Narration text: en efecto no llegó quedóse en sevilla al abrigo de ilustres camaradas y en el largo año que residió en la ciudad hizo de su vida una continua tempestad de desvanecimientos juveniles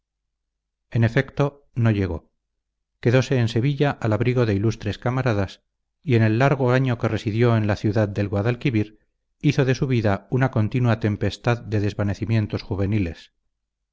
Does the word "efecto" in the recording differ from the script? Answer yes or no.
no